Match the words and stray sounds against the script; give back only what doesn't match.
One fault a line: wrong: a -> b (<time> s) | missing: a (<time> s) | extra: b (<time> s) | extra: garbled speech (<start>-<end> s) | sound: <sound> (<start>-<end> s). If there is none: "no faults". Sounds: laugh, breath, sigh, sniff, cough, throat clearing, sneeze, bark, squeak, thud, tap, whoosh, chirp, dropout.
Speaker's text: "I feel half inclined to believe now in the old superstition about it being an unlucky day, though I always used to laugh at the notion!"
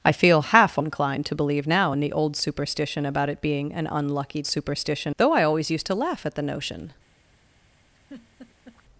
wrong: day -> superstition (4.5 s)
sound: laugh (7.9-8.8 s)